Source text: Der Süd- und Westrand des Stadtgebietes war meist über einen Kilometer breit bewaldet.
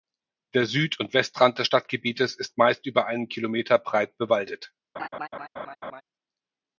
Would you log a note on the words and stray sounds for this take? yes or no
yes